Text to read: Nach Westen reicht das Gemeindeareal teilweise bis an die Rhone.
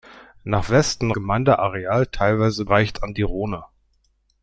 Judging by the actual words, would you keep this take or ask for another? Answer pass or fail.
fail